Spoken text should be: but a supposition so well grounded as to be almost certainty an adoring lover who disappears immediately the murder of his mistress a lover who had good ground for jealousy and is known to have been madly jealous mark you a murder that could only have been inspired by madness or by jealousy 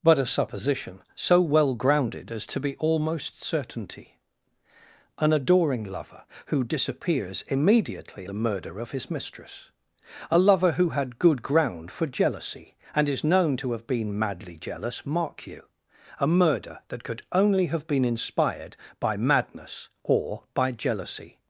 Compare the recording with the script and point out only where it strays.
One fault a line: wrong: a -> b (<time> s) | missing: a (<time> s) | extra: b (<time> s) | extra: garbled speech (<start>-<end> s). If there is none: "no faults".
no faults